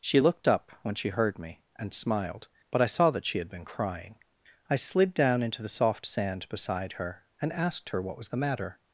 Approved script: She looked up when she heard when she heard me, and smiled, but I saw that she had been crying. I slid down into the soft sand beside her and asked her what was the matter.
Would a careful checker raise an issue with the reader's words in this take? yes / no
yes